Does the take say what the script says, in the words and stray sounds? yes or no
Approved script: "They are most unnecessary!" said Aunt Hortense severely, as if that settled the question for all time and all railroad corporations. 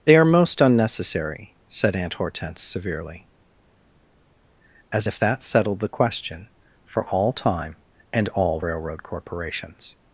yes